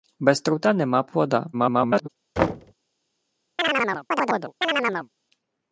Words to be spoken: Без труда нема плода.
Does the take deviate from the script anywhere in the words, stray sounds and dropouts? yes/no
yes